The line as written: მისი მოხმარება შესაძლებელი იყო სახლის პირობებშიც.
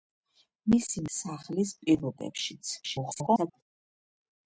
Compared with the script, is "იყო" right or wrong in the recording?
wrong